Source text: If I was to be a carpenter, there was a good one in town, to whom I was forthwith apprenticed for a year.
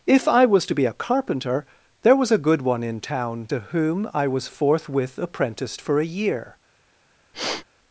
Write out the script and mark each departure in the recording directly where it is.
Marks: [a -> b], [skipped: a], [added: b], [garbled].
If I was to be a carpenter, there was a good one in town, to whom I was forthwith apprenticed for a year.